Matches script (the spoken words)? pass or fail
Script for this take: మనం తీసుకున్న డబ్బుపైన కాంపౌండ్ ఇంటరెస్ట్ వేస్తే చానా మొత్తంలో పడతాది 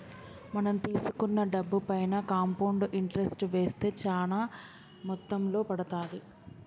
pass